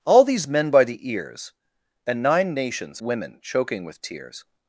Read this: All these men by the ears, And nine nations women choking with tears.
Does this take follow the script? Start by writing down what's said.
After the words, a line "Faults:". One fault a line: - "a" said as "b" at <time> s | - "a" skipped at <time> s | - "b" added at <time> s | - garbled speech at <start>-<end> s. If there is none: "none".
All these men by the ears, And nine nations women choking with tears.
Faults:
none